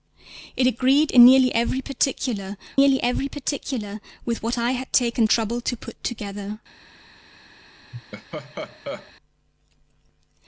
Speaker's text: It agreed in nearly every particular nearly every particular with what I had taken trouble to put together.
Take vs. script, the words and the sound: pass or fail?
fail